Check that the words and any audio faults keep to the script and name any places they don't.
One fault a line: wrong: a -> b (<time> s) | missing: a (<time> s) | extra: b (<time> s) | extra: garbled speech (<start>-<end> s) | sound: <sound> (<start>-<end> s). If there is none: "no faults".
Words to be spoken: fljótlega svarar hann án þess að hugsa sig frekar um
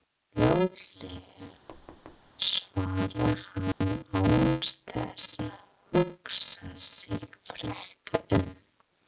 sound: thud (1.7-2.3 s)
sound: dropout (3.7-3.8 s)